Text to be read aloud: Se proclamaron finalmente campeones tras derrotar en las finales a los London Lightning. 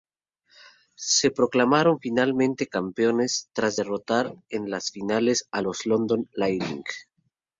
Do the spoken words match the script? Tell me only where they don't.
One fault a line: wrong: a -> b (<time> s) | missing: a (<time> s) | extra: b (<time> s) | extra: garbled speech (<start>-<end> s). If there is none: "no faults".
no faults